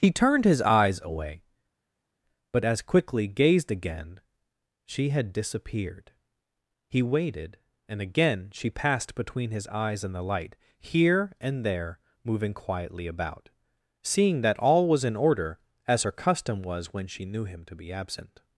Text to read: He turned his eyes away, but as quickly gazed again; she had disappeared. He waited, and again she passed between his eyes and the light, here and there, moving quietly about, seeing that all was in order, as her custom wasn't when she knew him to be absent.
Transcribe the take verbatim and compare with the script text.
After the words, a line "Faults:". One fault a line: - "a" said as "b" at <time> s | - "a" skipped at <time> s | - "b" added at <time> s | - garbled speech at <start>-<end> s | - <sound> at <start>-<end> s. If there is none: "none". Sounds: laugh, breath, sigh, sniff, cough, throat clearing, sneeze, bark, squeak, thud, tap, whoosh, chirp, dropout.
He turned his eyes away, but as quickly gazed again; she had disappeared. He waited, and again she passed between his eyes and the light, here and there, moving quietly about, seeing that all was in order, as her custom was when she knew him to be absent.
Faults:
- "wasn't" said as "was" at 16.6 s